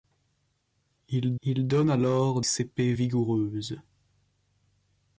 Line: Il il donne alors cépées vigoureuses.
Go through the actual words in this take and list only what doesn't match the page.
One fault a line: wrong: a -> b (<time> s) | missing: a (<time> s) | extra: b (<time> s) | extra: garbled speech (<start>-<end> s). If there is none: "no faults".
no faults